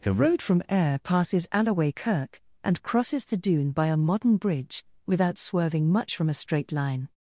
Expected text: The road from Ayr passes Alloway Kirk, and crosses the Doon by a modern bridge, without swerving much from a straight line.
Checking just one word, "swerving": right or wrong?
right